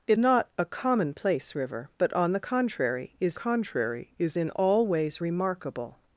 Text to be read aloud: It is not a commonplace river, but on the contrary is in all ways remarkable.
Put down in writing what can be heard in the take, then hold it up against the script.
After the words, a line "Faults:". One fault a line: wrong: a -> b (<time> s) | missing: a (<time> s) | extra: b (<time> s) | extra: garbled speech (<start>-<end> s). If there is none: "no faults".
It not a commonplace river, but on the contrary is contrary is in all ways remarkable.
Faults:
missing: is (0.2 s)
extra: contrary is (3.3 s)